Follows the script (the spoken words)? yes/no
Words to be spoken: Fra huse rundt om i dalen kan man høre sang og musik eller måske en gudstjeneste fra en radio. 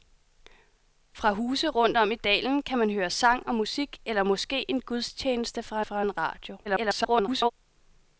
no